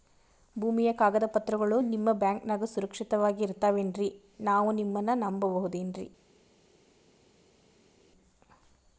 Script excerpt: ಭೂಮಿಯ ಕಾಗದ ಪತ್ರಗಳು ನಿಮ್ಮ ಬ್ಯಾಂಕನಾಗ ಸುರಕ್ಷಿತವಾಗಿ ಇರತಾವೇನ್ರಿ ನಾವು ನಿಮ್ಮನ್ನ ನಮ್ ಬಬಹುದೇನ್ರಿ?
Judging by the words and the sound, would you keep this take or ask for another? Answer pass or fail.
pass